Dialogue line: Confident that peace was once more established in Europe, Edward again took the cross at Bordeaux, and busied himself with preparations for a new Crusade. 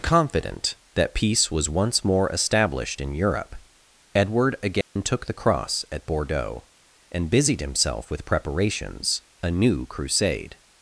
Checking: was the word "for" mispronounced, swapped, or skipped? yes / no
yes